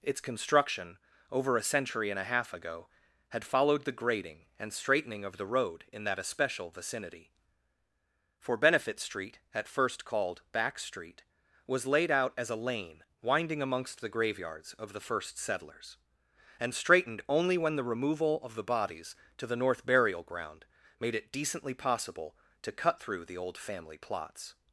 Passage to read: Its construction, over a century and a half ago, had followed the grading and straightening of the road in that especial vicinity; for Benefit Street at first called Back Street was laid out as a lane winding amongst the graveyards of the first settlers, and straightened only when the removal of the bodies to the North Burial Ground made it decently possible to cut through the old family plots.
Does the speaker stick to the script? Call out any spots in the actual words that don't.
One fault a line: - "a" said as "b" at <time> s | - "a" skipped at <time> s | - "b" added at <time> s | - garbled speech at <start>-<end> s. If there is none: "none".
none